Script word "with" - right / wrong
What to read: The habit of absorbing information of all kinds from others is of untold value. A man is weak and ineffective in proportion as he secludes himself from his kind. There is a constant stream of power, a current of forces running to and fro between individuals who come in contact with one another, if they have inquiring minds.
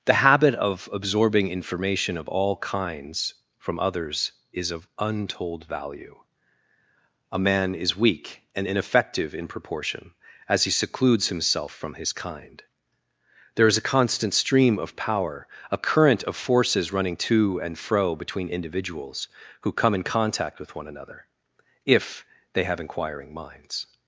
right